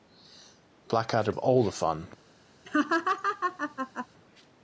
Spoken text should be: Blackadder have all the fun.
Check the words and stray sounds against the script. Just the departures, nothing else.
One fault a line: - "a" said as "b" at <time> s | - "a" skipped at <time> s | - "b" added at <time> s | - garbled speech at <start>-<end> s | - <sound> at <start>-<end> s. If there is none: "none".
- laugh at 2.6-4.1 s